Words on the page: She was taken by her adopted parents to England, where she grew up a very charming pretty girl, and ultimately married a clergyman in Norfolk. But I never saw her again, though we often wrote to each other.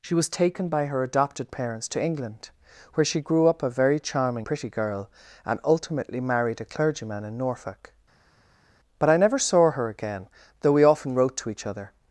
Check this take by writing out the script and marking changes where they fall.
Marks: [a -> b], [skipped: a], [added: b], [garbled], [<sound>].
She was taken by her adopted parents to England, where she grew up a very charming pretty girl, and ultimately married a clergyman in Norfolk. But I never saw her again, though we often wrote to each other.